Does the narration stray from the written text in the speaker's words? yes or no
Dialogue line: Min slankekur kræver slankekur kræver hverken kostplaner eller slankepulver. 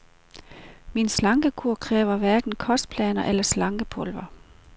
yes